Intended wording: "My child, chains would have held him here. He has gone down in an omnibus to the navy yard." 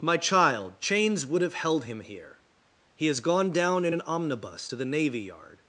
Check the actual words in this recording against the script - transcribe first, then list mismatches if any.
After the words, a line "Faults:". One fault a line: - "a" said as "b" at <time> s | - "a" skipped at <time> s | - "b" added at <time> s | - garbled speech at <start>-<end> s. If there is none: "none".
"My child, chains would have held him here. He has gone down in an omnibus to the navy yard."
Faults:
none